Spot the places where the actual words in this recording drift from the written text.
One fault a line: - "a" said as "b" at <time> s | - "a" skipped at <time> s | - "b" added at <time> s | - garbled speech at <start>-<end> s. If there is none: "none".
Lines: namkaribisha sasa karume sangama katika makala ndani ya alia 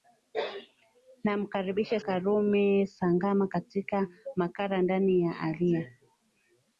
- "sasa" skipped at 2.0 s